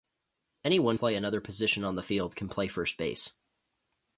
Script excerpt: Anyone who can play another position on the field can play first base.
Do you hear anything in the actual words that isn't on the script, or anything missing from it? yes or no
yes